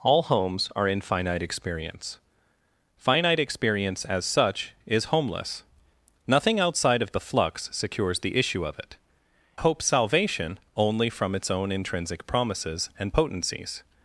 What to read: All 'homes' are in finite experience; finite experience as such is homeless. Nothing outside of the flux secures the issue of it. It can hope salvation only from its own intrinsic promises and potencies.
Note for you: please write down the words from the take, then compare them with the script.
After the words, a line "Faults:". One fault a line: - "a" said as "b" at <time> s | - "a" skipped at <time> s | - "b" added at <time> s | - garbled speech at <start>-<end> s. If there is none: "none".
All 'homes' are in finite experience; finite experience as such is homeless. Nothing outside of the flux secures the issue of it. Hope salvation only from its own intrinsic promises and potencies.
Faults:
- "It can" skipped at 9.0 s